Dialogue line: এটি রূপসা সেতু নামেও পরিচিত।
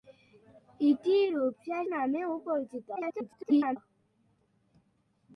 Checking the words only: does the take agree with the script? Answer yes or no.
no